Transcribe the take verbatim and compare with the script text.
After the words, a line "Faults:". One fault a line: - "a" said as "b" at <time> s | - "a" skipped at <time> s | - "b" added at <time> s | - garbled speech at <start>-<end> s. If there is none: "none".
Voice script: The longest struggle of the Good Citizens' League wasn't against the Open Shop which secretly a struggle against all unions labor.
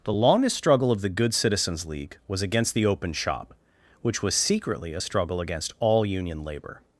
The longest struggle of the Good Citizens' League was against the Open Shop which was secretly a struggle against all union labor.
Faults:
- "wasn't" said as "was" at 2.3 s
- "was" added at 4.2 s
- "unions" said as "union" at 6.1 s